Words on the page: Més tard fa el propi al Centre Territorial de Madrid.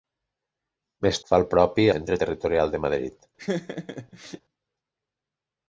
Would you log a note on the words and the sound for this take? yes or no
yes